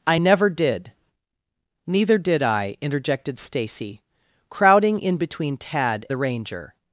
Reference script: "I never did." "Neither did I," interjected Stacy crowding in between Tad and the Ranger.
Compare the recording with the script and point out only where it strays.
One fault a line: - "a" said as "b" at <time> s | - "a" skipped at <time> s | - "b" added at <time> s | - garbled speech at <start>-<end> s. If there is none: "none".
- "and" skipped at 6.0 s